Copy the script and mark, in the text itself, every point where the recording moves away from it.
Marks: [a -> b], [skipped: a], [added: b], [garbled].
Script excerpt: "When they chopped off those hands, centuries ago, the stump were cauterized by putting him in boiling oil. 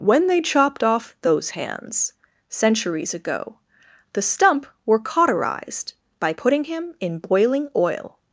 "When they chopped off those hands, centuries ago, the stump were cauterized by putting him in boiling oil.